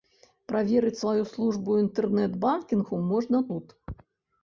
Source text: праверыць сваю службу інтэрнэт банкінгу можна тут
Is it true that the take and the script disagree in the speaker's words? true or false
false